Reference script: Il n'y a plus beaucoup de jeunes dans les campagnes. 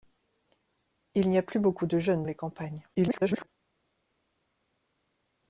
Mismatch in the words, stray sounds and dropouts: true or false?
true